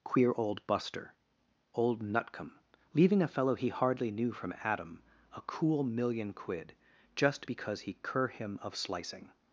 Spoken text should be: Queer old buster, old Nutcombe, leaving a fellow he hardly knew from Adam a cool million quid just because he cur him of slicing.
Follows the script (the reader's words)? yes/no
yes